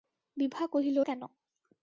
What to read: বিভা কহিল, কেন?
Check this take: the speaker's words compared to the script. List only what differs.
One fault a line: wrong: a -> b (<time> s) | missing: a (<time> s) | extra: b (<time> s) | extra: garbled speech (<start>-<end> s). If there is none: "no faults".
no faults